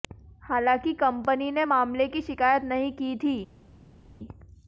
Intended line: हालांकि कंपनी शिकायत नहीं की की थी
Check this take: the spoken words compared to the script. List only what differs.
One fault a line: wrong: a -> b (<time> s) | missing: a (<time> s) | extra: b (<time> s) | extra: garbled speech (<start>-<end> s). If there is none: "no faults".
extra: ने मामले की (1.5 s)
missing: की (3.2 s)